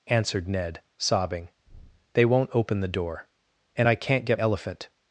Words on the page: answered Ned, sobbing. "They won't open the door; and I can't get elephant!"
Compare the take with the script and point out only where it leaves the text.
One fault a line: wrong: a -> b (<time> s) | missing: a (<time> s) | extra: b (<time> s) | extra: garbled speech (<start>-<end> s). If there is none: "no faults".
no faults